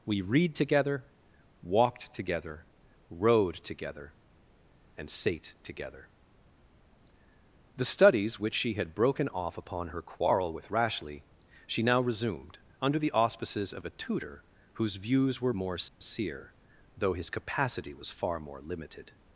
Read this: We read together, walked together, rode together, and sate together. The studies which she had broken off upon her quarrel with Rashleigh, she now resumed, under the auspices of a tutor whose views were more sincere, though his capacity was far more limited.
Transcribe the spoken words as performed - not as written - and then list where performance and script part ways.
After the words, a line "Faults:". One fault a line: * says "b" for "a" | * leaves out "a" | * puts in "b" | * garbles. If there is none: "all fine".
We read together, walked together, rode together, and sate together. The studies which she had broken off upon her quarrel with Rashleigh, she now resumed, under the auspices of a tutor whose views were more sincere, though his capacity was far more limited.
Faults:
all fine